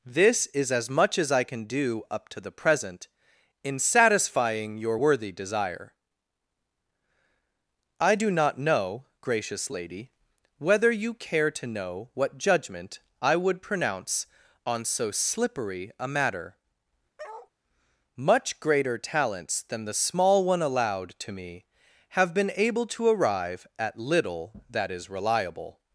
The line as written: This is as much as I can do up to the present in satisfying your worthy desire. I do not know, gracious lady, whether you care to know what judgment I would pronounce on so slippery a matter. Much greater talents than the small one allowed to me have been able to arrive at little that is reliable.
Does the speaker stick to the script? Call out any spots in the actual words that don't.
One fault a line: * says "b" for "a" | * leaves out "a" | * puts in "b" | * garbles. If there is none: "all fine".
all fine